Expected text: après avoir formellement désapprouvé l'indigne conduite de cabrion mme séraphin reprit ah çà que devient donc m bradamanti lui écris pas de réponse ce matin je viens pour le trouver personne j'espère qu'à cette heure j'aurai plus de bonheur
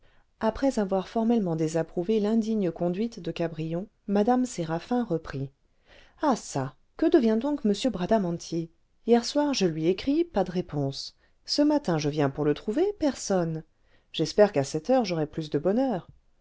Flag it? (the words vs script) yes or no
yes